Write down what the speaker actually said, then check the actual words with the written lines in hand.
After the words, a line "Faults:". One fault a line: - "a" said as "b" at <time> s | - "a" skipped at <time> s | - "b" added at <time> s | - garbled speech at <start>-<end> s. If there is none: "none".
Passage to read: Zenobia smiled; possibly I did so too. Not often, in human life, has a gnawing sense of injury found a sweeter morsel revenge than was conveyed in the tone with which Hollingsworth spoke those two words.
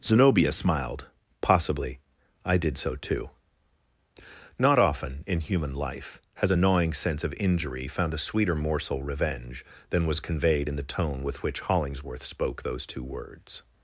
Zenobia smiled; possibly I did so too. Not often, in human life, has a gnawing sense of injury found a sweeter morsel revenge than was conveyed in the tone with which Hollingsworth spoke those two words.
Faults:
none